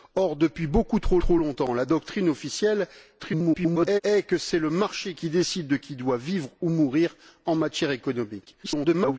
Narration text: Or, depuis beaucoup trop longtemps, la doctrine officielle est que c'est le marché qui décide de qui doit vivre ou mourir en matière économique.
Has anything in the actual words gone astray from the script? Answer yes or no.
yes